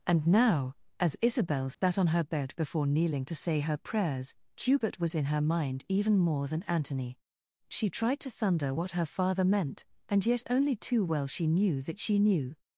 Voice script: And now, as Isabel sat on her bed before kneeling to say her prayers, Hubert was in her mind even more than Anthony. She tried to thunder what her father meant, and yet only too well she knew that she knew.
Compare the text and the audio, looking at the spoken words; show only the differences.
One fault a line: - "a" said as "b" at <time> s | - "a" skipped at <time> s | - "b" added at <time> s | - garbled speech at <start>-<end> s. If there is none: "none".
none